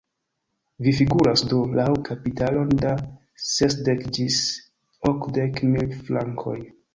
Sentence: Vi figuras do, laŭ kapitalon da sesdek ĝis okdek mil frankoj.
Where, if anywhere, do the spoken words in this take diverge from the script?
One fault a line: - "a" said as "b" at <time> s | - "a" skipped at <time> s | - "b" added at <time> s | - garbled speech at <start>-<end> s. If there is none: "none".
none